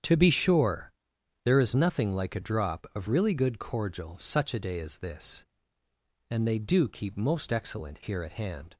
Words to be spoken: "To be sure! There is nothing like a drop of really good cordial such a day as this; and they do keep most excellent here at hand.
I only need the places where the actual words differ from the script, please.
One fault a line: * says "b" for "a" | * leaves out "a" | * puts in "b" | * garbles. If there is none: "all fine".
all fine